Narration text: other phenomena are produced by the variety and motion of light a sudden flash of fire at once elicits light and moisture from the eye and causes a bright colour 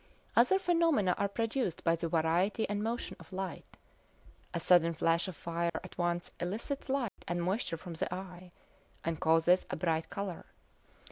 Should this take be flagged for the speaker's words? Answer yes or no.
no